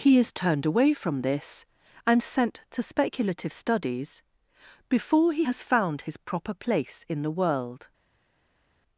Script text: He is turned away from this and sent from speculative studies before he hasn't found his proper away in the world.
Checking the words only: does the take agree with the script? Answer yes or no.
no